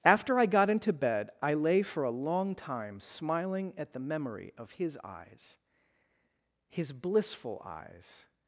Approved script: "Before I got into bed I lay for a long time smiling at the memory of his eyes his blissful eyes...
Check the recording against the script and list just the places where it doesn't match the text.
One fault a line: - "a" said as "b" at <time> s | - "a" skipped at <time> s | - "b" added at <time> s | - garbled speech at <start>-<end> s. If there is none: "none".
- "Before" said as "After" at 0.0 s